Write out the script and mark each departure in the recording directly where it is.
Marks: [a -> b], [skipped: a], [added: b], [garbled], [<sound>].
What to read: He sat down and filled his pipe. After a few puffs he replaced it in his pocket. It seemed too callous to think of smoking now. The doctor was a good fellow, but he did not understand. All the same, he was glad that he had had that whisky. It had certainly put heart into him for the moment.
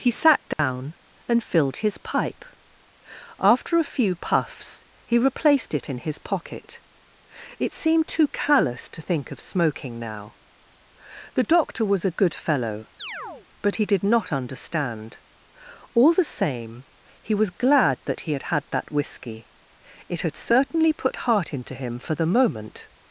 He sat down [dropout] and filled his pipe. After a few puffs he replaced it in his pocket. It seemed too callous to think of smoking now. The doctor was a good fellow, [chirp] but he did not understand. All the same, he was glad that he had had that whisky. It had certainly put heart into him for the moment.